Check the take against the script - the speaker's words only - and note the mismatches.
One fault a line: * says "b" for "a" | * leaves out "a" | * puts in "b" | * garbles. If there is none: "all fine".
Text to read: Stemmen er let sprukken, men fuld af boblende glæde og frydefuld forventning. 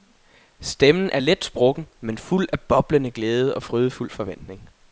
all fine